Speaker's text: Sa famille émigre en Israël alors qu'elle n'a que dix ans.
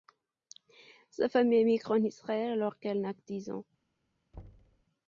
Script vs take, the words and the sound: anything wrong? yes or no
yes